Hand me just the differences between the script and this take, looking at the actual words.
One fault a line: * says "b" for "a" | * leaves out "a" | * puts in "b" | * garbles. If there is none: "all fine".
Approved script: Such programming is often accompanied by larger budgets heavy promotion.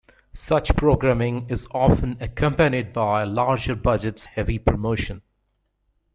all fine